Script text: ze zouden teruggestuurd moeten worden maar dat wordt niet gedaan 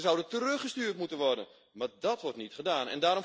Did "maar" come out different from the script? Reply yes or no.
no